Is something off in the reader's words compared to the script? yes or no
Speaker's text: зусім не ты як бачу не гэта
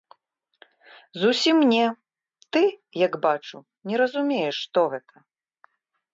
yes